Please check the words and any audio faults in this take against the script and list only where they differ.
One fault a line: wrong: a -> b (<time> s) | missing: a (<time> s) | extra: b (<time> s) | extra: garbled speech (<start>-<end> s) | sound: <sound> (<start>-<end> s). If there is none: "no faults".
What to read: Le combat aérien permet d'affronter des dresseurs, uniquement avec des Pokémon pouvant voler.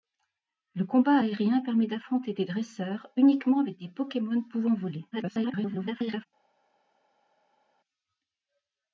extra: garbled speech (5.1-6.3 s)